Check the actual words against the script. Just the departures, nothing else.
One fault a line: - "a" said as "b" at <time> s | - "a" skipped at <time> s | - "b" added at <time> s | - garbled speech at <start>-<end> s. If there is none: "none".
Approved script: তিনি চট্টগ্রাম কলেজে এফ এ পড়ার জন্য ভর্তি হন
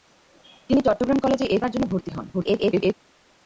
- "এ" skipped at 1.6 s
- garbled speech at 2.3-2.9 s